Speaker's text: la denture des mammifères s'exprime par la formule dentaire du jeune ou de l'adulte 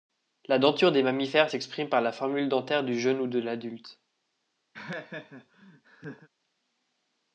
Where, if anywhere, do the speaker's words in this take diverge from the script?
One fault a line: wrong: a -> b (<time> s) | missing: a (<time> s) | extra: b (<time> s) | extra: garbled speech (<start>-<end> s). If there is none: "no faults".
no faults